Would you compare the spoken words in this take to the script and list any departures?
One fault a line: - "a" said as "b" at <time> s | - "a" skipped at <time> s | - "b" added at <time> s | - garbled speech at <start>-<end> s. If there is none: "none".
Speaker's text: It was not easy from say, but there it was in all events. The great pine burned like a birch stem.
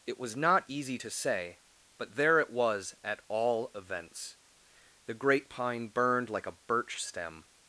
- "from" said as "to" at 1.0 s
- "in" said as "at" at 3.0 s